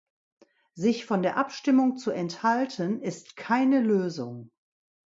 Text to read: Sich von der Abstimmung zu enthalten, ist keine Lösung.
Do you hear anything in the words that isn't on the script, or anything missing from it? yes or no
no